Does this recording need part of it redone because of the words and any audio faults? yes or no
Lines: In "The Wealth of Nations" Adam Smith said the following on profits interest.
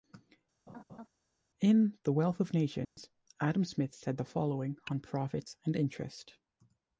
yes